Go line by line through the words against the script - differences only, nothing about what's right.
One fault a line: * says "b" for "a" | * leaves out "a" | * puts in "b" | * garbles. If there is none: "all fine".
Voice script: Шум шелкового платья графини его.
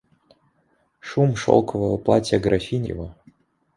all fine